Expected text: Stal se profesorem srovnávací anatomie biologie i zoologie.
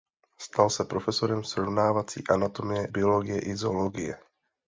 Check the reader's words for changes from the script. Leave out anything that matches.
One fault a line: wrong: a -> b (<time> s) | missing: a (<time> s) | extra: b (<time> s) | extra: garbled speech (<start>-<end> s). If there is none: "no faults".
no faults